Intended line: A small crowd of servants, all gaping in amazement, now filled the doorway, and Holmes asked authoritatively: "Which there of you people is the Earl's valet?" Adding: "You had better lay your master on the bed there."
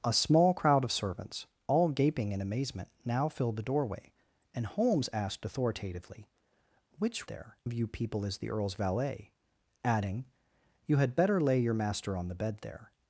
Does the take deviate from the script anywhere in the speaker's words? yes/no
no